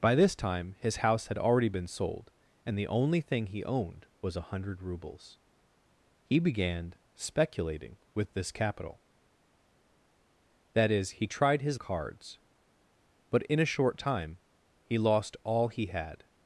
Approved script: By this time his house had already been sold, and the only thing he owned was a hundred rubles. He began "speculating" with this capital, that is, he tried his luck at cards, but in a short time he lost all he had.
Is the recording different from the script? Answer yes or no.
yes